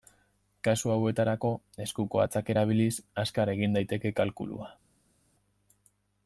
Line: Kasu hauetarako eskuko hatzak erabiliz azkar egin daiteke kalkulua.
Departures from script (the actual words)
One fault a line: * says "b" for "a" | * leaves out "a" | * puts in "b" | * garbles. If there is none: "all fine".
all fine